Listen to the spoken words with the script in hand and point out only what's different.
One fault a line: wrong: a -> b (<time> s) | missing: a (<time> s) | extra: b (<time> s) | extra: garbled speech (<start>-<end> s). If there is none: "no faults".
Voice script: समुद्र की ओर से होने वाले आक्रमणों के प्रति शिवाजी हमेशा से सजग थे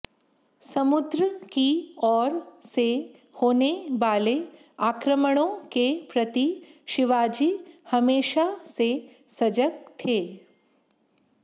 no faults